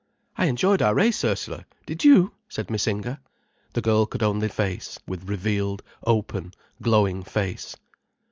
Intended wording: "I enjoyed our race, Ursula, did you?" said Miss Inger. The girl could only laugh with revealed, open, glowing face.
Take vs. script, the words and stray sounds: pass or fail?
fail